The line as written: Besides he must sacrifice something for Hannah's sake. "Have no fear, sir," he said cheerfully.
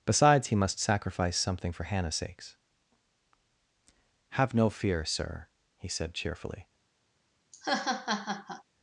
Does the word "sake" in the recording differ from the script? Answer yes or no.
yes